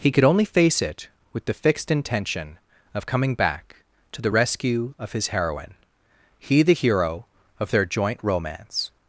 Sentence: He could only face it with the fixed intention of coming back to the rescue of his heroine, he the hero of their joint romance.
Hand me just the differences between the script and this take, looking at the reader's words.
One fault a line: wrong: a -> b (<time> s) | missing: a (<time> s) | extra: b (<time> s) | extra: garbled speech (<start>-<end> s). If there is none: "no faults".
no faults